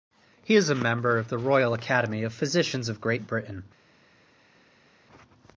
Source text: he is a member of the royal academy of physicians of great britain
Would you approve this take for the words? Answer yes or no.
yes